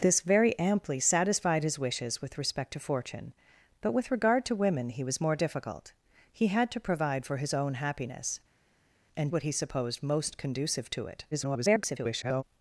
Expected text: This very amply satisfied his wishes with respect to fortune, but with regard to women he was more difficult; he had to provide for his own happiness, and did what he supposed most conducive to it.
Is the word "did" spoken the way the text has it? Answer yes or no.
no